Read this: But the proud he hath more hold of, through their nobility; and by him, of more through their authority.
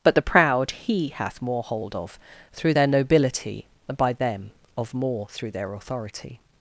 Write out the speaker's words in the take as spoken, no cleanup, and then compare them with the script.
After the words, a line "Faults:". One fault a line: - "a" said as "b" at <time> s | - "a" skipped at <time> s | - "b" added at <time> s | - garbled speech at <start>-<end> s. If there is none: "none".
But the proud he hath more hold of, through their nobility; and by them, of more through their authority.
Faults:
- "him" said as "them" at 4.1 s